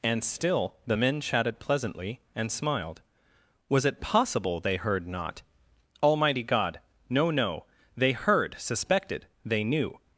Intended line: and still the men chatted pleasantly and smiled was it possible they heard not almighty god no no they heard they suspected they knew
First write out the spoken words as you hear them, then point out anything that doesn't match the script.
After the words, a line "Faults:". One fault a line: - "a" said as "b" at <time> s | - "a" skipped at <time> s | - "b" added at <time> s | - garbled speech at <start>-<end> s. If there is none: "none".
and still the men chatted pleasantly and smiled was it possible they heard not almighty god no no they heard suspected they knew
Faults:
- "they" skipped at 8.5 s